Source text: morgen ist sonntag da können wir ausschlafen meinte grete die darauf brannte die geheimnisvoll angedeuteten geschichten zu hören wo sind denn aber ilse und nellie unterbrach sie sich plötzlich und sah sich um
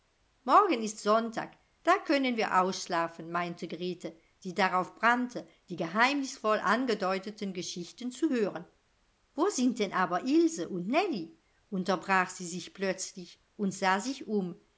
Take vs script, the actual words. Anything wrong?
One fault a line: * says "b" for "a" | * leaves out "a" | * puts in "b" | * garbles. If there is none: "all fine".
all fine